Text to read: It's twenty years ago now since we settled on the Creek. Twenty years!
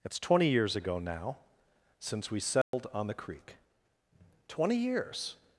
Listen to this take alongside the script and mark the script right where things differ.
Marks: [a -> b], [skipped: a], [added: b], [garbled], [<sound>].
It's twenty years ago now since we settled [dropout] on the Creek. Twenty years!